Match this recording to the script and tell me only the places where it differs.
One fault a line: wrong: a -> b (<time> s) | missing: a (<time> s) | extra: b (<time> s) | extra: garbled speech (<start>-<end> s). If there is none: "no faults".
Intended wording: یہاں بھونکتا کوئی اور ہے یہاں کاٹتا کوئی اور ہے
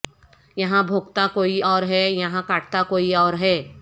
no faults